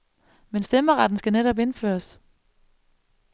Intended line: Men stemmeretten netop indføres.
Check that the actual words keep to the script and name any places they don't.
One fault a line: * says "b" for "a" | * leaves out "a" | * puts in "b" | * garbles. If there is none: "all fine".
* puts in "skal"